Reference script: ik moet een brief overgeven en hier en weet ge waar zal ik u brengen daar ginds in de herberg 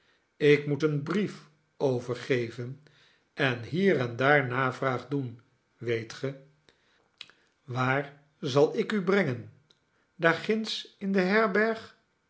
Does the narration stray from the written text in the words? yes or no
yes